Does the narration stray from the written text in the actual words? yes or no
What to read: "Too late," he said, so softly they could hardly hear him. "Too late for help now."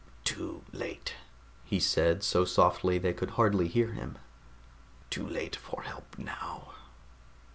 no